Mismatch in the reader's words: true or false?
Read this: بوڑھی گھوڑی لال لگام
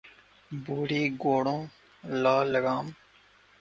false